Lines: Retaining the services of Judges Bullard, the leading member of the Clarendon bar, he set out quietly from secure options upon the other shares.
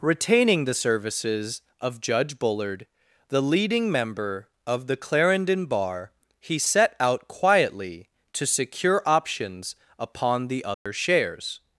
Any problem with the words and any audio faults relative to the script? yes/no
yes